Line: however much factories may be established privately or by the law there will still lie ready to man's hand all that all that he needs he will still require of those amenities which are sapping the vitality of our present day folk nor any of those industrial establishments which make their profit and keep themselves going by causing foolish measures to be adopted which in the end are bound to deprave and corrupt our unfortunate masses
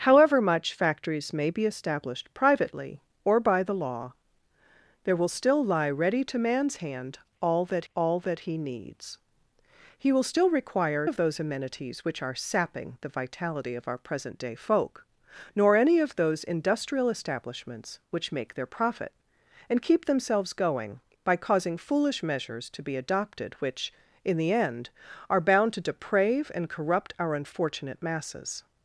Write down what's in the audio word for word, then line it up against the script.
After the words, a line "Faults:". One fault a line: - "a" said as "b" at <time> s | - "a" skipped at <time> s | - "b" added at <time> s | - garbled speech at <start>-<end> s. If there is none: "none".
however much factories may be established privately or by the law there will still lie ready to man's hand all that all that he needs he will still require of those amenities which are sapping the vitality of our present day folk nor any of those industrial establishments which make their profit and keep themselves going by causing foolish measures to be adopted which in the end are bound to deprave and corrupt our unfortunate masses
Faults:
none